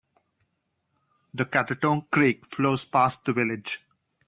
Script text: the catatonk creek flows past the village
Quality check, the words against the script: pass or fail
pass